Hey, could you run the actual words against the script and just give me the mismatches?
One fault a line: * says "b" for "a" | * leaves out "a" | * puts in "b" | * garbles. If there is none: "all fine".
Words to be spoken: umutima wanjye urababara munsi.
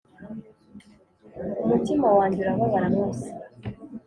all fine